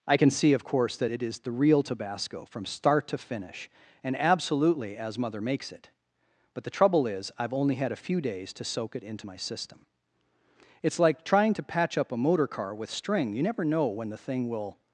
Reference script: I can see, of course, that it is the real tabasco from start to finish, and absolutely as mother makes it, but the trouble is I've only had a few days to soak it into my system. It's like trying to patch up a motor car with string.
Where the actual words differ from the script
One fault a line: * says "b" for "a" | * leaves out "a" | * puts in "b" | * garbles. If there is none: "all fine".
* puts in "You never know when the thing will"